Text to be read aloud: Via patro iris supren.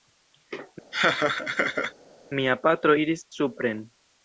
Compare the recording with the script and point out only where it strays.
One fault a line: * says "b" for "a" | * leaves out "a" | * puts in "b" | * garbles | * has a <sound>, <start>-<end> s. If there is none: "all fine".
* has a laugh, 0.9-1.9 s
* says "Mia" for "Via"